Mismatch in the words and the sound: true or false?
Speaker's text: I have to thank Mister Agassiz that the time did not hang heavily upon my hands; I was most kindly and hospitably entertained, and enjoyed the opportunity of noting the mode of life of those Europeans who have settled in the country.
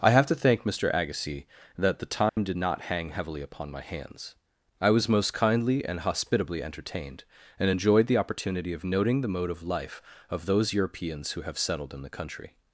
true